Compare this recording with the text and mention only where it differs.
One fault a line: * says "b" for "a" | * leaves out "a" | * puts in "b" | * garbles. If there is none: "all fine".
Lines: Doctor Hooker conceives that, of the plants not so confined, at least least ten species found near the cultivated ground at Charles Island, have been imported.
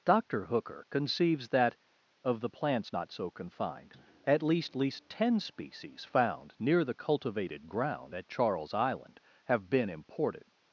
all fine